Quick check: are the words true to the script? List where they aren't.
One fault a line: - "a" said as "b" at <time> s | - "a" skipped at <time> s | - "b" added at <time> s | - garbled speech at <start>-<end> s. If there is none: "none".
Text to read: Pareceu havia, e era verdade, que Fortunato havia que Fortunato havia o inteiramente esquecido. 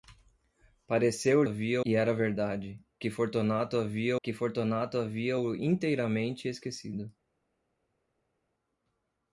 none